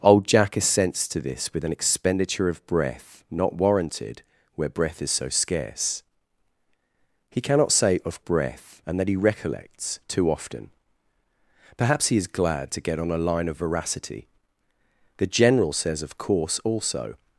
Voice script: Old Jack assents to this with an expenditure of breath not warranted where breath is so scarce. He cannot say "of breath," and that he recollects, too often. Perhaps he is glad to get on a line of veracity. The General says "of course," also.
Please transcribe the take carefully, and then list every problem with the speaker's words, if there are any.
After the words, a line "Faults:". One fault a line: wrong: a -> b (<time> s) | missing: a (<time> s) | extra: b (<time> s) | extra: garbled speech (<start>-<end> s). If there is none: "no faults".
Old Jack assents to this with an expenditure of breath not warranted where breath is so scarce. He cannot say "of breath," and that he recollects, too often. Perhaps he is glad to get on a line of veracity. The General says "of course," also.
Faults:
no faults